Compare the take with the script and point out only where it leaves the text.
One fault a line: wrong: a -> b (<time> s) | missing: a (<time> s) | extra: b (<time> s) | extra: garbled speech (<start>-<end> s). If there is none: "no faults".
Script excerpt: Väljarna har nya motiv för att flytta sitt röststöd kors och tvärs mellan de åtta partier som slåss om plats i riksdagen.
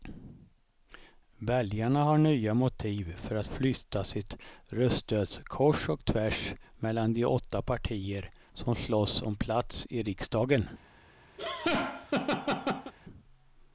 no faults